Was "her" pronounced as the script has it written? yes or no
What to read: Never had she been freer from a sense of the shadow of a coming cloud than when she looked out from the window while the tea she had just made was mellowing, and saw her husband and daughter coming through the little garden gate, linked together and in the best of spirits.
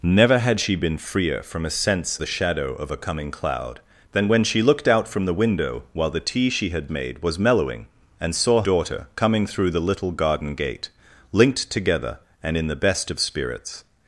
no